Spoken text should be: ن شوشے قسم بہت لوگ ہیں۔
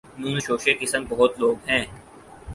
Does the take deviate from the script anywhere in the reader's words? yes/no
no